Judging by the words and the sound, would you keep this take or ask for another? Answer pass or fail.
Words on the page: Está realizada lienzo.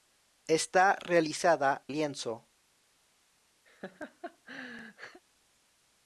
fail